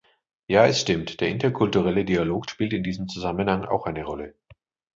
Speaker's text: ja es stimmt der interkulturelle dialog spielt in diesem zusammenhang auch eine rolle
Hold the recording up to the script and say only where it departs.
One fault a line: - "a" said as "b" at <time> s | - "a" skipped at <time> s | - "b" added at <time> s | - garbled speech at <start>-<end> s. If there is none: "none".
none